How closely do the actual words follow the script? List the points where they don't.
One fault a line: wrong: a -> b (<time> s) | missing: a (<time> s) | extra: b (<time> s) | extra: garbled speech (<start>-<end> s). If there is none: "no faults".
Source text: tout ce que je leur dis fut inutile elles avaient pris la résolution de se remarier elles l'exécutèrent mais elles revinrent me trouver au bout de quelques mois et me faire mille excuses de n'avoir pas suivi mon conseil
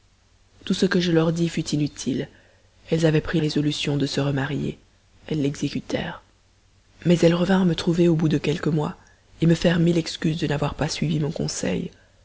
missing: la (3.4 s)